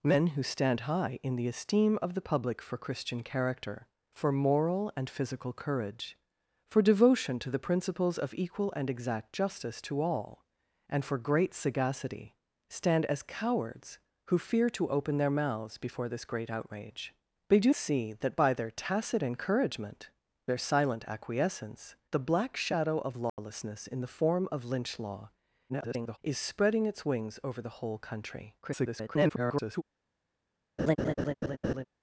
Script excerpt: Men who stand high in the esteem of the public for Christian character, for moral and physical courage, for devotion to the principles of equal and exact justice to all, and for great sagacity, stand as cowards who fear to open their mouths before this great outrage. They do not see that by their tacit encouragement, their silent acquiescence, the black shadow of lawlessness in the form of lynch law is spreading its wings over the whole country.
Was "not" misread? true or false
true